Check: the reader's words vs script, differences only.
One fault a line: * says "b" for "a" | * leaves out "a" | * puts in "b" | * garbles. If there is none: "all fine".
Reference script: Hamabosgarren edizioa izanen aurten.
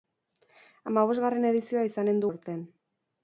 all fine